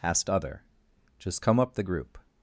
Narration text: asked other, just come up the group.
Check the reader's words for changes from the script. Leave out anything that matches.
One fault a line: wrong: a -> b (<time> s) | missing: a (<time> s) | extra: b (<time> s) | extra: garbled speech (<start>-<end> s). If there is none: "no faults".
no faults